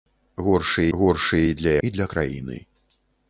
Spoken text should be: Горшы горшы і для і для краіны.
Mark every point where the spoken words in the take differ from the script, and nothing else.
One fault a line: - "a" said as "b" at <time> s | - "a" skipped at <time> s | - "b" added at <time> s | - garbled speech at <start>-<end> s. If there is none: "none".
none